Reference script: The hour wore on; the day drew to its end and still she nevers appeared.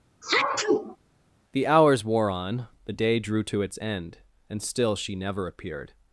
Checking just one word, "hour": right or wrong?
wrong